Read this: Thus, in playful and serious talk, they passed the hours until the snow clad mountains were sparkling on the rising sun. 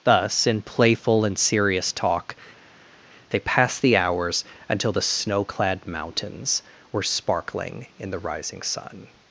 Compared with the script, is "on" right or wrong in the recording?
wrong